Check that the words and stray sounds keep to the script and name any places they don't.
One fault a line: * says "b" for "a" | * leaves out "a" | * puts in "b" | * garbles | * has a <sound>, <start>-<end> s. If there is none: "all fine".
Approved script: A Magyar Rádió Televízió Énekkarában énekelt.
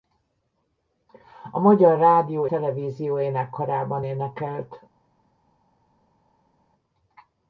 all fine